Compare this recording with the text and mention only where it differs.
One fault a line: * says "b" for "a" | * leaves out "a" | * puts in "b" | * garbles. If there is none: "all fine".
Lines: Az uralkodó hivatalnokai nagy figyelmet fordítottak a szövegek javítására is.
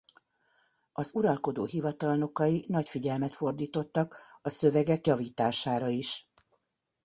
all fine